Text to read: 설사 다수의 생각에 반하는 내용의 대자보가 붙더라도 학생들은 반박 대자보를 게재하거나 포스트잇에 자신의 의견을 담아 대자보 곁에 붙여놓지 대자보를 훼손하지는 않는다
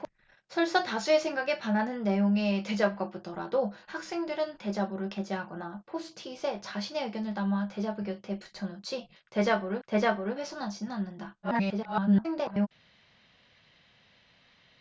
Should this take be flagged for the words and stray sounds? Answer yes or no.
yes